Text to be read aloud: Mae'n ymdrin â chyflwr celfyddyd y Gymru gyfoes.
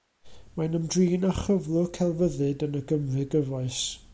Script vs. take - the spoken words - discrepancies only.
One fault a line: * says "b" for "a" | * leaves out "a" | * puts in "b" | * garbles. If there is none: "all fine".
* puts in "yn"